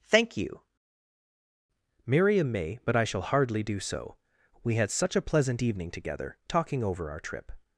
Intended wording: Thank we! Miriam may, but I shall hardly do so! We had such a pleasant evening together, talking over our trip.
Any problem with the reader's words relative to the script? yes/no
yes